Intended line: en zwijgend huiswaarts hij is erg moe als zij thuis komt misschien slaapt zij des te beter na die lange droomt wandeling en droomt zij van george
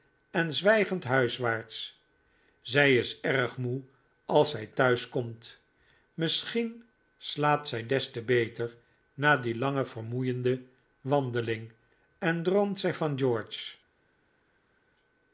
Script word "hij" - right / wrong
wrong